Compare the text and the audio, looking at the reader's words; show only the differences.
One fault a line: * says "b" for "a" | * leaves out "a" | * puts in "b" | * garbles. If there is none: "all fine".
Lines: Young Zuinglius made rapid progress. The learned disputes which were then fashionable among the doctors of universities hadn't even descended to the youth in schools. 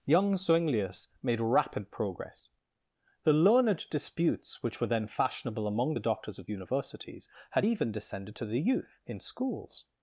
* says "had" for "hadn't"